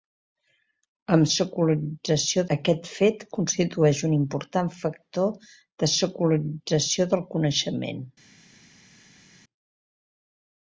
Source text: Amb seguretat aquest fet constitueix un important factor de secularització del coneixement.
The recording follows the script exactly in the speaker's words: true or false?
false